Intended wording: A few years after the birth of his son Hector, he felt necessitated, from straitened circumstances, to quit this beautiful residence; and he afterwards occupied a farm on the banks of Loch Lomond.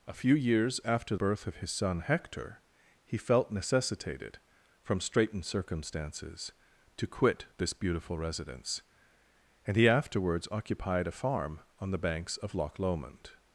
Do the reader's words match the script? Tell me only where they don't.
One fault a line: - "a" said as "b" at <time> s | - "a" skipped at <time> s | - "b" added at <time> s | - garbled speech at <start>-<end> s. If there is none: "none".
- "the" skipped at 1.1 s